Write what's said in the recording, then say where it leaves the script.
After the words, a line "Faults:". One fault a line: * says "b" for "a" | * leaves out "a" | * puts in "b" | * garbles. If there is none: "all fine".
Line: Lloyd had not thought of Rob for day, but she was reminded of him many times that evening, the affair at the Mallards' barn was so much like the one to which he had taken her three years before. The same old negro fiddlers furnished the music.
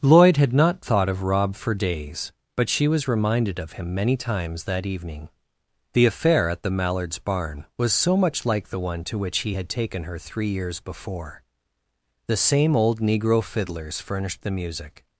Lloyd had not thought of Rob for days, but she was reminded of him many times that evening, the affair at the Mallards' barn was so much like the one to which he had taken her three years before. The same old negro fiddlers furnished the music.
Faults:
* says "days" for "day"